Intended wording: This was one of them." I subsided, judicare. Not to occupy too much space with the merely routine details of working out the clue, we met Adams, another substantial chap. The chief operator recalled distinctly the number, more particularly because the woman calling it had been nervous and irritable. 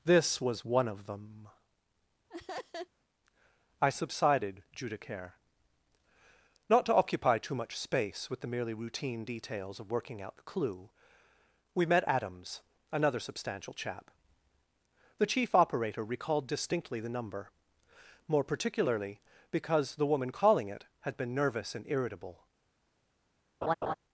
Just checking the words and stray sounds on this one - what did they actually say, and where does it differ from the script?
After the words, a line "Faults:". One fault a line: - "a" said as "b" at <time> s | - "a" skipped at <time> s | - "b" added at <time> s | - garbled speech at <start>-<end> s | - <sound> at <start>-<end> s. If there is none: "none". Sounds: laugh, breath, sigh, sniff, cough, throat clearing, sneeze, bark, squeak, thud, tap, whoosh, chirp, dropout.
This was one of them." I subsided, judicare. Not to occupy too much space with the merely routine details of working out the clue, we met Adams, another substantial chap. The chief operator recalled distinctly the number, more particularly because the woman calling it had been nervous and irritable.
Faults:
- laugh at 2.3-2.9 s
- laugh at 23.6-23.9 s